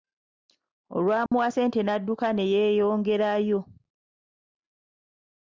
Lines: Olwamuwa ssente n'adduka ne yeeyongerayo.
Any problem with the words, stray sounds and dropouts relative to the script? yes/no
yes